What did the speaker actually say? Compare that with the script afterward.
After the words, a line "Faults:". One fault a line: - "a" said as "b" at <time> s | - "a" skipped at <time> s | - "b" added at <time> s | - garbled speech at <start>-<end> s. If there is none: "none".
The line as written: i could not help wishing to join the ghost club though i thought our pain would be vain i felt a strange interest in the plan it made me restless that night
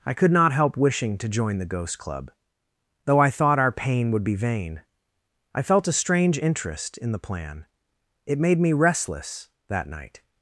i could not help wishing to join the ghost club though i thought our pain would be vain i felt a strange interest in the plan it made me restless that night
Faults:
none